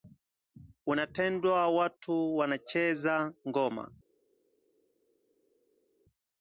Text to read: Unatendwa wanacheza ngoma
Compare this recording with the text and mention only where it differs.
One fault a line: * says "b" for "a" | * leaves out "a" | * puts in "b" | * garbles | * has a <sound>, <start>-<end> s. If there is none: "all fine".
* puts in "watu"